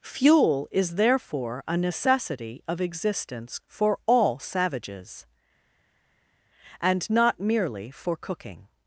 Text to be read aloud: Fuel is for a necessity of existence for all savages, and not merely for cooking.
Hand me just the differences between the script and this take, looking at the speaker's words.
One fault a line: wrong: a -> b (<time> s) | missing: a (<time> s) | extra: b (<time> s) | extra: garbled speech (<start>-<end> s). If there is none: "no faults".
wrong: for -> therefore (0.9 s)